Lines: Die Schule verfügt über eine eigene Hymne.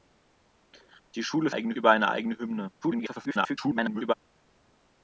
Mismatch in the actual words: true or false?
true